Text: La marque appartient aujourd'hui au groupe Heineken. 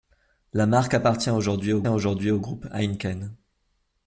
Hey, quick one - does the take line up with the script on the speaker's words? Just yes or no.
no